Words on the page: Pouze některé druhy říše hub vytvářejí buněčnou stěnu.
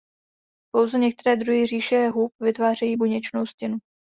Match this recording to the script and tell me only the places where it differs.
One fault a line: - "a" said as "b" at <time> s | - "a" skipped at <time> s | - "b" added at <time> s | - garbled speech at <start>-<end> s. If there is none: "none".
none